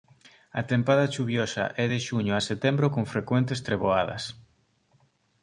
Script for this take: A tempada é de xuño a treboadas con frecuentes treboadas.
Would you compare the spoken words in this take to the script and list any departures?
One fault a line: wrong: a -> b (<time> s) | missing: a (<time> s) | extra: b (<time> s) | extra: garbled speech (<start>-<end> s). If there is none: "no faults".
extra: chuviosa (1.1 s)
wrong: treboadas -> setembro (2.5 s)